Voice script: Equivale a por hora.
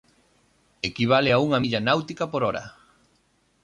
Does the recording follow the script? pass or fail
fail